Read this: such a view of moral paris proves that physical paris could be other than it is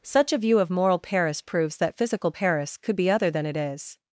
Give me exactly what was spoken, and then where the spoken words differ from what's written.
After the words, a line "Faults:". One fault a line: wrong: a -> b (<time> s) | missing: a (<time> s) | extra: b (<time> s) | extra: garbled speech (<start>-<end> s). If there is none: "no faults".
such a view of moral paris proves that physical paris could be other than it is
Faults:
no faults